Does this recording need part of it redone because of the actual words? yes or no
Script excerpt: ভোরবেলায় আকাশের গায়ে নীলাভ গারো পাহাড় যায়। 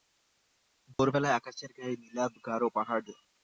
no